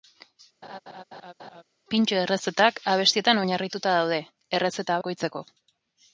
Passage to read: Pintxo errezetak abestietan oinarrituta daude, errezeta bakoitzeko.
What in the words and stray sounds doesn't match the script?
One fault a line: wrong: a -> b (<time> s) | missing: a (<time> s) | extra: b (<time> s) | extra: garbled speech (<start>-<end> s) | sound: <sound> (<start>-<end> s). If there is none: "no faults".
sound: laugh (0.6-1.6 s)